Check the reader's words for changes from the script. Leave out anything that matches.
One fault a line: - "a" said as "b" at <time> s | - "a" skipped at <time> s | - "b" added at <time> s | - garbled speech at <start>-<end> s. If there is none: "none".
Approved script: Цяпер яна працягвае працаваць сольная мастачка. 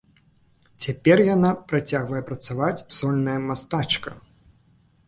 none